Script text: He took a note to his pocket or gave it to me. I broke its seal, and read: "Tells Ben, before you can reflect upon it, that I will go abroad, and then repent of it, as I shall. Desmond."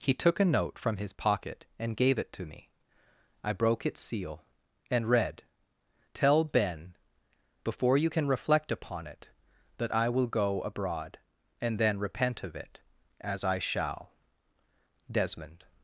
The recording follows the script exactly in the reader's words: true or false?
false